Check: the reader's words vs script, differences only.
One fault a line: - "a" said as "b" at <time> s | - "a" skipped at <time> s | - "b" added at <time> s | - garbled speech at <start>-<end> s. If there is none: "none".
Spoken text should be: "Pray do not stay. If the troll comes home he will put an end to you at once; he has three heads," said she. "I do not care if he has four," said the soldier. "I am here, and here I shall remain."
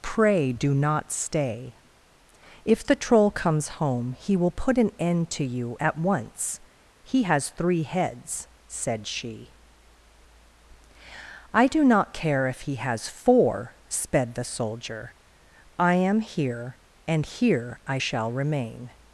- "said" said as "sped" at 13.9 s